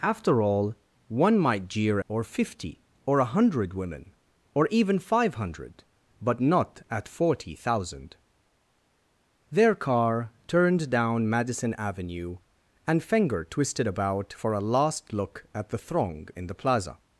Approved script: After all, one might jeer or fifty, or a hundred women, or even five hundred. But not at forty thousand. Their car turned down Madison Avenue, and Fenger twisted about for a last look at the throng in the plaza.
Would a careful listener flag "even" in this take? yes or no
no